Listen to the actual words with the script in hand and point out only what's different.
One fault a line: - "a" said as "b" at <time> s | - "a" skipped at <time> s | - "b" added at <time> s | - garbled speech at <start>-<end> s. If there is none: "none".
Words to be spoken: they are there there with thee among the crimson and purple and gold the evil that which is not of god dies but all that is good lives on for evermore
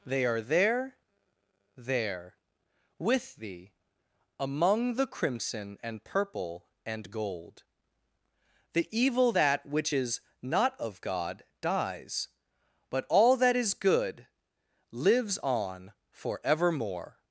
none